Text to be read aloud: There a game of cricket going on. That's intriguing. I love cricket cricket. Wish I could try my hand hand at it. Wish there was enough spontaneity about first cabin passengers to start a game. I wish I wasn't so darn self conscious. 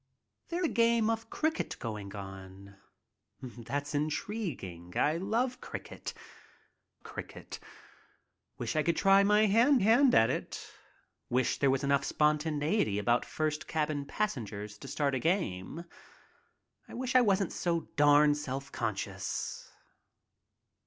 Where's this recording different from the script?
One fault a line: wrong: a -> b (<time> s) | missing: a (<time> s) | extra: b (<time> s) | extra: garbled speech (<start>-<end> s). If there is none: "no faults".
no faults